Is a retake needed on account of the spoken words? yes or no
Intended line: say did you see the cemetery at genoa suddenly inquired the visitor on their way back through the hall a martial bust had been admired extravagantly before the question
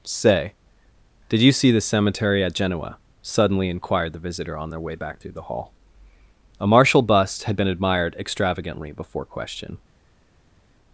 yes